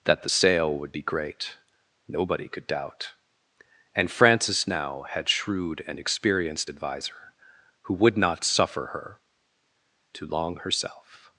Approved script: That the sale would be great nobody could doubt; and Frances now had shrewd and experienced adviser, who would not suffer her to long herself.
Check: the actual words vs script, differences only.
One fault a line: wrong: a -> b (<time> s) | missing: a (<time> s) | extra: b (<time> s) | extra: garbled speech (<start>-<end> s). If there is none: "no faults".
no faults